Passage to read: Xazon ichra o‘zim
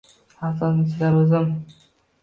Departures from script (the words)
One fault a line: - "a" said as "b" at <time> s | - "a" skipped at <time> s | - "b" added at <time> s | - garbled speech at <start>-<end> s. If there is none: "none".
none